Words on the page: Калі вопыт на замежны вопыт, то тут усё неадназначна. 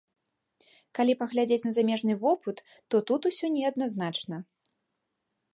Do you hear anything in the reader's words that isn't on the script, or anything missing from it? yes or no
yes